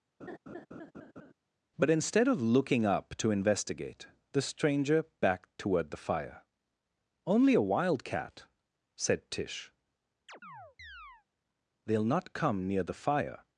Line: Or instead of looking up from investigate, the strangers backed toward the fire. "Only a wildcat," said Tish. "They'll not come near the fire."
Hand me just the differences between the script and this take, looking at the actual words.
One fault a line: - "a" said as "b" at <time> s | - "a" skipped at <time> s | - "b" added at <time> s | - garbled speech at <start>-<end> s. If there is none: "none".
- "Or" said as "But" at 1.8 s
- "from" said as "to" at 3.2 s
- "strangers" said as "stranger" at 4.4 s